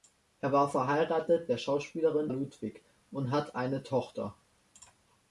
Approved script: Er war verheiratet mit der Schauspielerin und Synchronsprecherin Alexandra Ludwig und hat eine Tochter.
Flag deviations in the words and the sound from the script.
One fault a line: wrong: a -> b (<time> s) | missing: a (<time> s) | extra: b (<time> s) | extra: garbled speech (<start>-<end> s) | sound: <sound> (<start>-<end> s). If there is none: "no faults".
missing: mit (1.5 s)
missing: und Synchronsprecherin Alexandra (2.3 s)